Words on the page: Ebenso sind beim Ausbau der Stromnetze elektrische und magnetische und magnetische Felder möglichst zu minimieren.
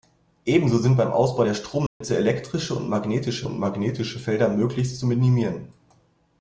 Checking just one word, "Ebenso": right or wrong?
right